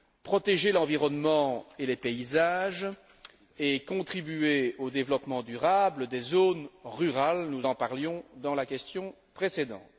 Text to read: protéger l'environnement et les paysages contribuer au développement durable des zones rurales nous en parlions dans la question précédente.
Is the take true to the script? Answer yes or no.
no